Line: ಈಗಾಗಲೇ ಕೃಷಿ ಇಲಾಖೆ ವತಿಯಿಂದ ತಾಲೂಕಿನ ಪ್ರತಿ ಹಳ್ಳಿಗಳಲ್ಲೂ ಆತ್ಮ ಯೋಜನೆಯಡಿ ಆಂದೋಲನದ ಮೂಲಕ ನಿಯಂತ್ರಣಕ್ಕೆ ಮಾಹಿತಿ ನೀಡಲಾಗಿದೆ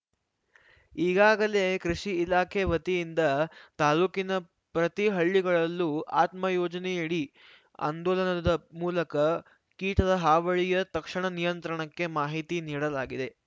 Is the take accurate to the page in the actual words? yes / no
no